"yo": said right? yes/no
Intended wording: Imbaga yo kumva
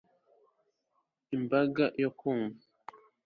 yes